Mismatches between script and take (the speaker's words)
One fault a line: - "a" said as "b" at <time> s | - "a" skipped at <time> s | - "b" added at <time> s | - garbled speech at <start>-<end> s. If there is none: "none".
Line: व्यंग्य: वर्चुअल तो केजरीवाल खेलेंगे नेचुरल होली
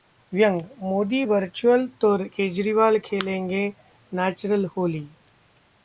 - "मोदी" added at 0.8 s